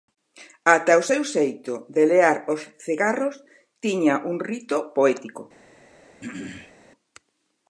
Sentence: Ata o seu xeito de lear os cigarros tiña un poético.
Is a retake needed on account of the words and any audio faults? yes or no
yes